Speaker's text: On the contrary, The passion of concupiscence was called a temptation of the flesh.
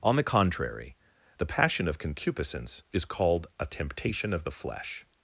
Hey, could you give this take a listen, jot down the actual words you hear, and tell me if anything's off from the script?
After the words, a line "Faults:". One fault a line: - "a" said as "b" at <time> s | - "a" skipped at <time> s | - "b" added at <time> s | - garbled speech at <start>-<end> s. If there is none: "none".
On the contrary, The passion of concupiscence is called a temptation of the flesh.
Faults:
- "was" said as "is" at 2.9 s